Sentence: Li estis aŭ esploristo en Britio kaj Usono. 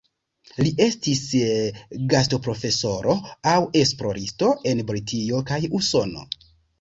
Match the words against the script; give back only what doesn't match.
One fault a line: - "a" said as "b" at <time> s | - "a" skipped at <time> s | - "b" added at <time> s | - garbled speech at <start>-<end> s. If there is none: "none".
- "gastoprofesoro" added at 2.1 s